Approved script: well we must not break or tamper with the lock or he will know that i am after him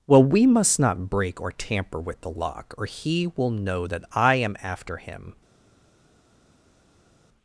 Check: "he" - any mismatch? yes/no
no